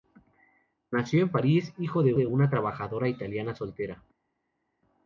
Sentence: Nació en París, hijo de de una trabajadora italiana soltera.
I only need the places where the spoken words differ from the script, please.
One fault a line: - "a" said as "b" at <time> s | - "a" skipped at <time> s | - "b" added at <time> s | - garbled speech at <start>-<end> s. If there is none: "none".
none